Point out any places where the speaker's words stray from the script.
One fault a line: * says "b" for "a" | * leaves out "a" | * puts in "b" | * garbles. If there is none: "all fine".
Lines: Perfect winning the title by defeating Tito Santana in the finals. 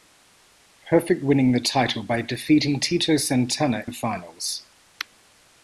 * leaves out "in"